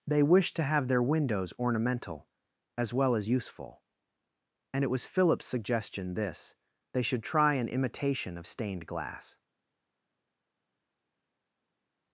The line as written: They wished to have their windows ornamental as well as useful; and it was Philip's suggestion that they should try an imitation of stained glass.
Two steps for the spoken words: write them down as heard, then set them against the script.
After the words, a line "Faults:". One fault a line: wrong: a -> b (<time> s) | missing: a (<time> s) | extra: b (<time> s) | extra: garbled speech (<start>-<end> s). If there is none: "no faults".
They wished to have their windows ornamental as well as useful; and it was Philip's suggestion this they should try an imitation of stained glass.
Faults:
wrong: that -> this (6.1 s)